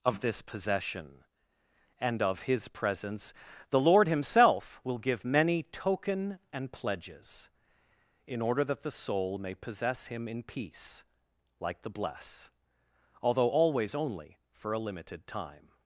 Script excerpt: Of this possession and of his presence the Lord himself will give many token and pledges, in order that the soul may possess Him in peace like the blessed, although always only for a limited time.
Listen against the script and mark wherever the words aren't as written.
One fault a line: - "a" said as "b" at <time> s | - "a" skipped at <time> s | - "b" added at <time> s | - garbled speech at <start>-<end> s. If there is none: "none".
- "blessed" said as "bless" at 11.9 s